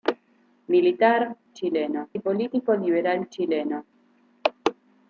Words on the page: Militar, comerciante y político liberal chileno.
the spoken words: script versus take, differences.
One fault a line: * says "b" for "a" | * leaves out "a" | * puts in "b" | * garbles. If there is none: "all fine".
* says "chileno" for "comerciante"